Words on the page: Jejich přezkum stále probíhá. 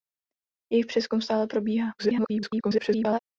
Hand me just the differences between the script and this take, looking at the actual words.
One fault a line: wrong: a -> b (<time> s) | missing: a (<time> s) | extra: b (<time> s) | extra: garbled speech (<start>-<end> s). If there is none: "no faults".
extra: garbled speech (2.0-3.2 s)